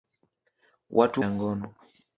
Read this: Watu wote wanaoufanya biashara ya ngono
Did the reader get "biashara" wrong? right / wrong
wrong